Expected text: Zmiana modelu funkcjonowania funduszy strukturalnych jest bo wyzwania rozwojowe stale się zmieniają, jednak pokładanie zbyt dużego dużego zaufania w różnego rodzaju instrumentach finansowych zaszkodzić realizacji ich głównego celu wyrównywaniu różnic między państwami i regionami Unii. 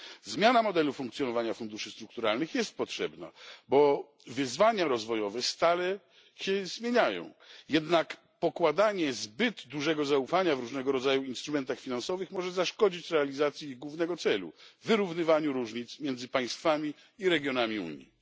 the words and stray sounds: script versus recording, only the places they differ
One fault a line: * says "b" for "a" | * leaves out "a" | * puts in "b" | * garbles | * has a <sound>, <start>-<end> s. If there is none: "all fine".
* puts in "potrzebna"
* leaves out "dużego"
* puts in "może"